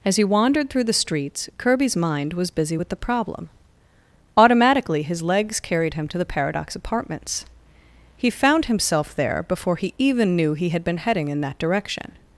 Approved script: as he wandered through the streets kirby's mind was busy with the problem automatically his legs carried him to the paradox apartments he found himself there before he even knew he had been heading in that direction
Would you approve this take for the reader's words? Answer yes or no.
yes